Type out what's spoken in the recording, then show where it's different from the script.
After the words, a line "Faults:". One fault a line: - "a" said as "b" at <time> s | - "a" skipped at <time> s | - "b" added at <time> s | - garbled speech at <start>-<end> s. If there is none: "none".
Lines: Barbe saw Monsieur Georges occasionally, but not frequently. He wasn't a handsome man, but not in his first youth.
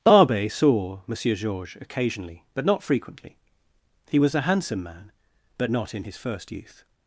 Barbe saw Monsieur Georges occasionally, but not frequently. He was a handsome man, but not in his first youth.
Faults:
- "wasn't" said as "was" at 4.2 s